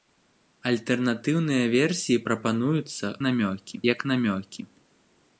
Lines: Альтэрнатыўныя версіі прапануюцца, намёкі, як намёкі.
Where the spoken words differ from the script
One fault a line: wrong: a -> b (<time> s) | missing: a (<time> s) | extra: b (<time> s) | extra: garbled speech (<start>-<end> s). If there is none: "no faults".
no faults